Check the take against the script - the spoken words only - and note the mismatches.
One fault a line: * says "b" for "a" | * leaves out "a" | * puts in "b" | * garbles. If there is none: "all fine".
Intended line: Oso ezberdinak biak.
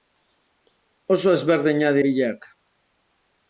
all fine